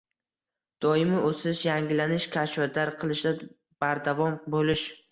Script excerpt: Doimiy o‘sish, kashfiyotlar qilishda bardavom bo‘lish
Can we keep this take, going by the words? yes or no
no